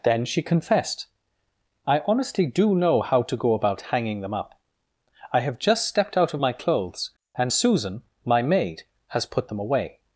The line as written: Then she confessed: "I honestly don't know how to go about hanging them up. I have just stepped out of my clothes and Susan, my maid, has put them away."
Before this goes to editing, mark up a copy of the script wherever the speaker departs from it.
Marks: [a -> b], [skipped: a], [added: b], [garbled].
Then she confessed: "I honestly [don't -> do] know how to go about hanging them up. I have just stepped out of my clothes and Susan, my maid, has put them away."